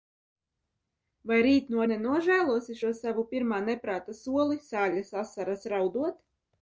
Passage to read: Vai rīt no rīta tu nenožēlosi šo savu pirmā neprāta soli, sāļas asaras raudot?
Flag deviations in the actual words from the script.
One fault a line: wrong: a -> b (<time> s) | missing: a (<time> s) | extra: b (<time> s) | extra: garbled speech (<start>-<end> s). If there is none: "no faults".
missing: rīta tu (1.9 s)